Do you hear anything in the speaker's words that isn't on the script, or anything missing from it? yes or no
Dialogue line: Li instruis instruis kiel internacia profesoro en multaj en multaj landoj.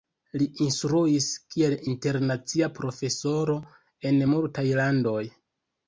yes